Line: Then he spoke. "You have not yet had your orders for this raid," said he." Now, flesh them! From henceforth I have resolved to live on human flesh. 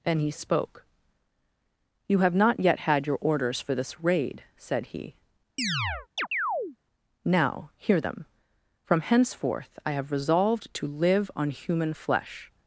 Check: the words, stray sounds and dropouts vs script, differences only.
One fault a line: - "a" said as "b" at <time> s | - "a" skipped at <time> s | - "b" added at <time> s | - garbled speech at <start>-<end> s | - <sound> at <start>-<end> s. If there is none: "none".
- chirp at 5.6-6.8 s
- "flesh" said as "hear" at 7.7 s